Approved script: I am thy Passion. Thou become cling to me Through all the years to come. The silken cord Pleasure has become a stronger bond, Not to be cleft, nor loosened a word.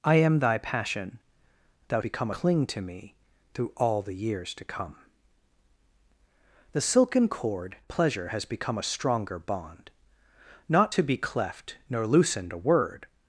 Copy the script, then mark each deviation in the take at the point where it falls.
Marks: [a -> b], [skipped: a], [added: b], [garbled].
I am thy Passion. Thou become cling to me Through all the years to come. The silken cord Pleasure has become a stronger bond, Not to be cleft, nor loosened a word.